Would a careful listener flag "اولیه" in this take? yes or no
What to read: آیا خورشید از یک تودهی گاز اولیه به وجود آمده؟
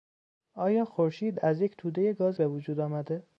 yes